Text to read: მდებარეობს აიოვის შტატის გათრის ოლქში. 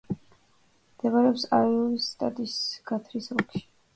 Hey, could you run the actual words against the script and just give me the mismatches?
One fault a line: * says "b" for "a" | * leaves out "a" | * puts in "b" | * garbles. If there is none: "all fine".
all fine